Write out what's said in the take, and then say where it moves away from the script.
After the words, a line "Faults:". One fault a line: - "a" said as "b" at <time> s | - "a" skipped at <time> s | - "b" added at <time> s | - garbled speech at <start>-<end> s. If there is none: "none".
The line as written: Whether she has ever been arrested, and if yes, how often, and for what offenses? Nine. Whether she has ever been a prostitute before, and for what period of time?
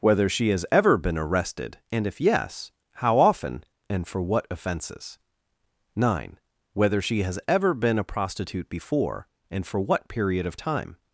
Whether she has ever been arrested, and if yes, how often, and for what offenses? Nine. Whether she has ever been a prostitute before, and for what period of time?
Faults:
none